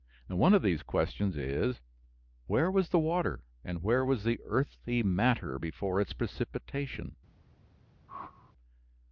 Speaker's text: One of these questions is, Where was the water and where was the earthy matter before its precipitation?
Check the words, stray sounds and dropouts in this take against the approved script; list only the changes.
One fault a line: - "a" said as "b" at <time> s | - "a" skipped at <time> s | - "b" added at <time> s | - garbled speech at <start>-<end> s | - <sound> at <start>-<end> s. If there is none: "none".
- whoosh at 8.1-8.5 s